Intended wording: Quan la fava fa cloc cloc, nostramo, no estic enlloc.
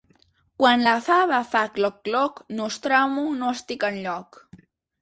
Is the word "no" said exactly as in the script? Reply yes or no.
yes